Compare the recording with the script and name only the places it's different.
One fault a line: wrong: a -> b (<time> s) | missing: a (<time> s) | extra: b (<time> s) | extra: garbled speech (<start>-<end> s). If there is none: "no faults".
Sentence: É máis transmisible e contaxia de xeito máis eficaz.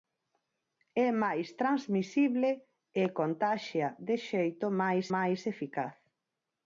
extra: máis (5.1 s)